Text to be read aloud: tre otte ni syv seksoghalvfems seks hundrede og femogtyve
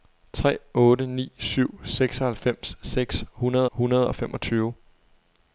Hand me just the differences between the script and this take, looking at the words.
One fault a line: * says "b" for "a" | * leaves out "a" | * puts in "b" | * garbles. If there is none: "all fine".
* puts in "hundrede"